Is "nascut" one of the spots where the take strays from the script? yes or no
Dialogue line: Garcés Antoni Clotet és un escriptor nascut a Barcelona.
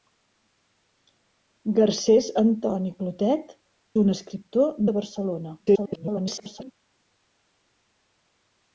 yes